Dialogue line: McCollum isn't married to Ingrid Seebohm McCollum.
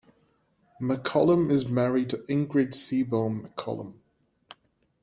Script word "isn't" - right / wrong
wrong